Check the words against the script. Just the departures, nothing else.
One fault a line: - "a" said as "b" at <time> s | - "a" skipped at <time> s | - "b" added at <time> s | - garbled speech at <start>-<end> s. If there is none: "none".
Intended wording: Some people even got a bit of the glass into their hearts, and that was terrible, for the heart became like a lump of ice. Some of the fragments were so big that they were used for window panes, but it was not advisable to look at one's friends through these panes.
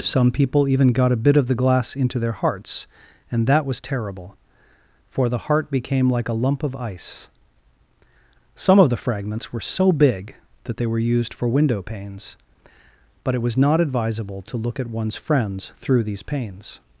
none